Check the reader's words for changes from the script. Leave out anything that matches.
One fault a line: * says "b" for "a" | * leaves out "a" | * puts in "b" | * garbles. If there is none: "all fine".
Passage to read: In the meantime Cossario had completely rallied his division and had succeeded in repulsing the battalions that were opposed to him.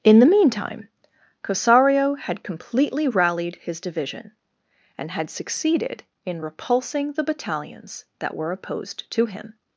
all fine